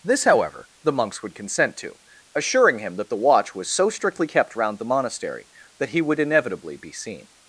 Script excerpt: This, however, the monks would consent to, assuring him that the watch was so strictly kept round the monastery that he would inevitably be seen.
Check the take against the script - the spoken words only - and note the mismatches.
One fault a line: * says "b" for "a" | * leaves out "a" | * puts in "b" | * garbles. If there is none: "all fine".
all fine